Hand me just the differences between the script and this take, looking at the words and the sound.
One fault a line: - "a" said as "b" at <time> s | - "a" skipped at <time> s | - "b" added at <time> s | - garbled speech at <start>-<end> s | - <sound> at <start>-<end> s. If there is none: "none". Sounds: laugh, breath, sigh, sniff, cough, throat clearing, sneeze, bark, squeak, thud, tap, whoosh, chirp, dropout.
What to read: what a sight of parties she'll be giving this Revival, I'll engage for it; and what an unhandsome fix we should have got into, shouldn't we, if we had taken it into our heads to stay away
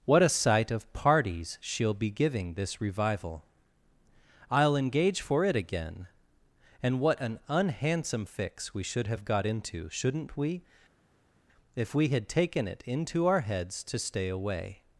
- "again" added at 5.5 s